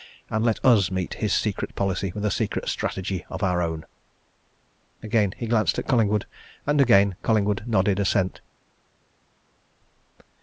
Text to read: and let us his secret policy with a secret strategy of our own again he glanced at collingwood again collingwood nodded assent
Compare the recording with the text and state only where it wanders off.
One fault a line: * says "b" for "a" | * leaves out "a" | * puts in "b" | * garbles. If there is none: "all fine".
* puts in "meet"
* puts in "and"